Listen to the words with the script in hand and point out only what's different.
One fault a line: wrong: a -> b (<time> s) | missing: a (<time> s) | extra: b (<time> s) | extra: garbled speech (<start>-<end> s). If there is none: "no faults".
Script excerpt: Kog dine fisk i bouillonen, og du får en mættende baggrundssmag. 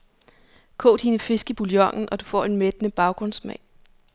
no faults